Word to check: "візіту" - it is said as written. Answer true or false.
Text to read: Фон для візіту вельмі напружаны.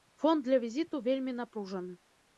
true